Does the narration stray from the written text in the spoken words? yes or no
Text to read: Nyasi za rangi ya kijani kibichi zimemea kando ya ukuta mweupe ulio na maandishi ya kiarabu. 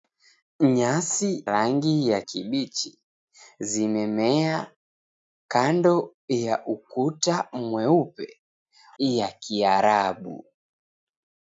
yes